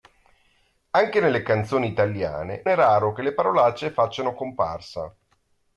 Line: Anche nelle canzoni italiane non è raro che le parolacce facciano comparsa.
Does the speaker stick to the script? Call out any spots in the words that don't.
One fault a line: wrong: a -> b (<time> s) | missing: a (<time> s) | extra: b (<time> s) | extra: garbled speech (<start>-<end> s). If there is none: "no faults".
missing: non (2.6 s)